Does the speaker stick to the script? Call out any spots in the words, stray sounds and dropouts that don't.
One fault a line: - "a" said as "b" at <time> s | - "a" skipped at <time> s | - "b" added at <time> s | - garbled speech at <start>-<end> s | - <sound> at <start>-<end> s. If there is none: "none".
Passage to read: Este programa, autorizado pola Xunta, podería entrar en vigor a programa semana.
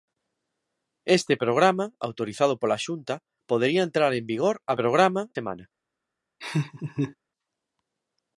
- laugh at 6.4-7.2 s